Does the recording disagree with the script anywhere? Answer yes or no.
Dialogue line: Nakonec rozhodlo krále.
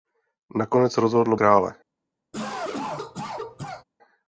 no